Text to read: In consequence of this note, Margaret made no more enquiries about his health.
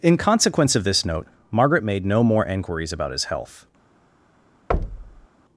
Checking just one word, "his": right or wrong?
right